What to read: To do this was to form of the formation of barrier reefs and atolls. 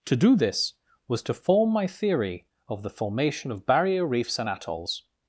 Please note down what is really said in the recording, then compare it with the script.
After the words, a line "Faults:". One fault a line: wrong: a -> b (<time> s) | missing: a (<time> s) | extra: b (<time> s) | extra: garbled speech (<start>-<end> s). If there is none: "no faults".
To do this was to form my theory of the formation of barrier reefs and atolls.
Faults:
extra: my theory (1.7 s)